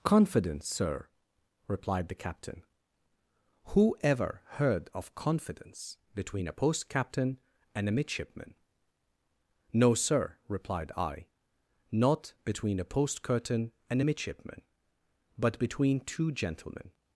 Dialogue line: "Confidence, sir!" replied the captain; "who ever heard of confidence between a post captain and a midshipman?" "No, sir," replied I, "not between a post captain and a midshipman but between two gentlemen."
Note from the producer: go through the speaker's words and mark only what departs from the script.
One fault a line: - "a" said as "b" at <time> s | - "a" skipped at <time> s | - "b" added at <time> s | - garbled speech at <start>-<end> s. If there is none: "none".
- "captain" said as "curtain" at 13.2 s